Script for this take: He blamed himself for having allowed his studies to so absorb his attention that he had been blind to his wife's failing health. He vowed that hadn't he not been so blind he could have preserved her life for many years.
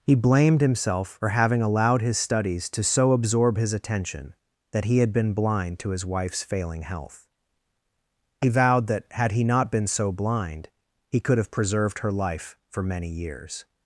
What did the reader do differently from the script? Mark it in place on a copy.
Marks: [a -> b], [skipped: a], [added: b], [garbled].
He blamed himself for having allowed his studies to so absorb his attention that he had been blind to his wife's failing health. He vowed that [hadn't -> had] he not been so blind he could have preserved her life for many years.